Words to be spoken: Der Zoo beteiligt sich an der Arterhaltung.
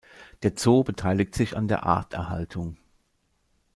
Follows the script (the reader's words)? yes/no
yes